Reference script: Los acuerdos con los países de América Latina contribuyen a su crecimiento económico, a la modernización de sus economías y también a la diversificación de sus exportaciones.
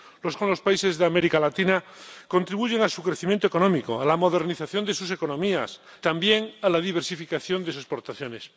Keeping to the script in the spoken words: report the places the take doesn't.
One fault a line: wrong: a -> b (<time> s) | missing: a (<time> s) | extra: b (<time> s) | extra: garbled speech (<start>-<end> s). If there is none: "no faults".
missing: acuerdos (0.4 s)
missing: y (5.8 s)
missing: sus (7.7 s)